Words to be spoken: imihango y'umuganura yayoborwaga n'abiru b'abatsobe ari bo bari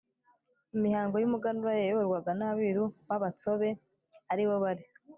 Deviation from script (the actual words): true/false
false